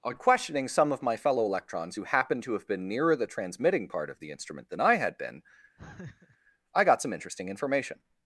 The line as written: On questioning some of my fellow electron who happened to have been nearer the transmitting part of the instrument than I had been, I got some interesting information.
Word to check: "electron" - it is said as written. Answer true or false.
false